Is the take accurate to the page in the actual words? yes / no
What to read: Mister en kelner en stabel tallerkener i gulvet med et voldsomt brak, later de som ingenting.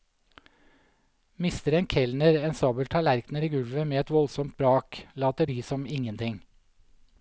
yes